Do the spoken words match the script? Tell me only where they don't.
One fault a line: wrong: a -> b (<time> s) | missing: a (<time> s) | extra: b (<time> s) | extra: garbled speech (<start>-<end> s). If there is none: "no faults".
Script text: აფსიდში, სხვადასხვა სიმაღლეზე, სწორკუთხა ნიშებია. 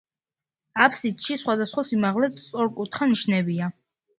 no faults